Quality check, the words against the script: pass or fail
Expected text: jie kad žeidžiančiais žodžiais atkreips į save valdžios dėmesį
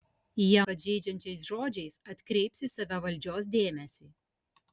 pass